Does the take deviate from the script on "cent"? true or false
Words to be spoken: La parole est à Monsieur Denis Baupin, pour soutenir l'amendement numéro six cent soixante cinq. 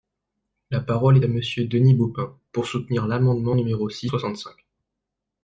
true